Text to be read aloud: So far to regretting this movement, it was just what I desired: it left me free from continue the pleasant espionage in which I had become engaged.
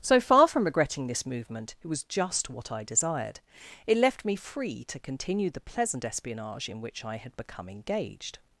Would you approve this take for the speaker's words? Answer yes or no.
no